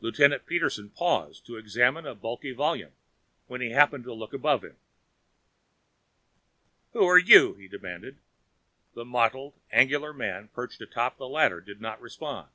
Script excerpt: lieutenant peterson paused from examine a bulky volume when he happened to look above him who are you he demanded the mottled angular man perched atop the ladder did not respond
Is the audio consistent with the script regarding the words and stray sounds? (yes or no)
no